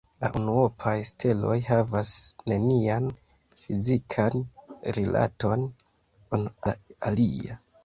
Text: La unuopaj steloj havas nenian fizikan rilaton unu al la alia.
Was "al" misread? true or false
true